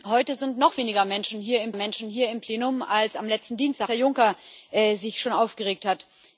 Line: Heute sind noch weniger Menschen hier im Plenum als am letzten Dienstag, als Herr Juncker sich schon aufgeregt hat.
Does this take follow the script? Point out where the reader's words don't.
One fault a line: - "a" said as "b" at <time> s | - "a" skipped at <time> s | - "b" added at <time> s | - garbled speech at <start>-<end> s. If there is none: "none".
- "Menschen hier im" added at 1.7 s
- "als" skipped at 3.9 s